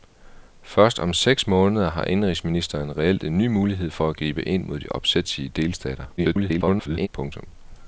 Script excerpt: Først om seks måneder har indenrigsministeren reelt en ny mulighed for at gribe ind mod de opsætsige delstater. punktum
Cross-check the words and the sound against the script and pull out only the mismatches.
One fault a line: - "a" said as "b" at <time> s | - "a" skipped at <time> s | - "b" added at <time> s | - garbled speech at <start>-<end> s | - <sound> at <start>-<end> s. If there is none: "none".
- garbled speech at 6.2-7.1 s